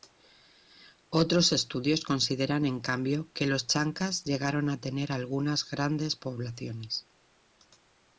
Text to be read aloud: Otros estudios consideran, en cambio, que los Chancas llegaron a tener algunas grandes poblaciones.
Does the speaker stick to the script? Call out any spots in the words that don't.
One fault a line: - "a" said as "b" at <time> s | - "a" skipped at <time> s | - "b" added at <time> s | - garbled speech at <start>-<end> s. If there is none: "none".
none